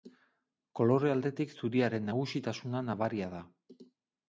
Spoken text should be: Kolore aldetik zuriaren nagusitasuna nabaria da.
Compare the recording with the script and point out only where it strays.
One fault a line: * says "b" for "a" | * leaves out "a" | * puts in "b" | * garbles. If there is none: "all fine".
all fine